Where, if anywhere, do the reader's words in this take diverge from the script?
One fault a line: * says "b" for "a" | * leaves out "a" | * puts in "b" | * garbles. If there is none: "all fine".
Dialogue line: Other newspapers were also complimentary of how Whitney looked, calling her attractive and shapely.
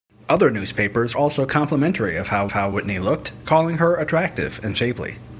* leaves out "were"
* puts in "how"